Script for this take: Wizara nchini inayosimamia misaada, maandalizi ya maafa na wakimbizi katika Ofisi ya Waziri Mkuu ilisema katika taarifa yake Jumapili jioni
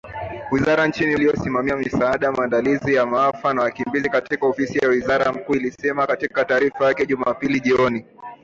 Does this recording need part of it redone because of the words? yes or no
no